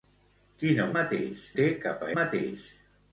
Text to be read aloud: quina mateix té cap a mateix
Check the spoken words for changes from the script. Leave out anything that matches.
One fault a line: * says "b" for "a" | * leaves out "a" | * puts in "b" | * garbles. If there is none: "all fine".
all fine